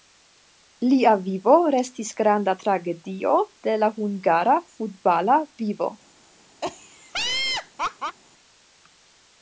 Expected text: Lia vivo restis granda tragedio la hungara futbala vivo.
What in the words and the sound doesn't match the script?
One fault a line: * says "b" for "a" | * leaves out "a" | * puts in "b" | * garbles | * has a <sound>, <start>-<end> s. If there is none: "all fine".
* puts in "de"
* has a laugh, 6.6-8.2 s